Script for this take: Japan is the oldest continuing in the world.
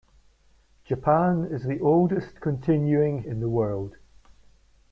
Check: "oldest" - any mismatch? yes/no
no